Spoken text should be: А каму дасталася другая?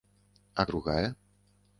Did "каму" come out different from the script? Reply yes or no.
yes